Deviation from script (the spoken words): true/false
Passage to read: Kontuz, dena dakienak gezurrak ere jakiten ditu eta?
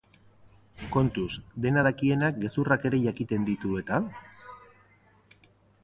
false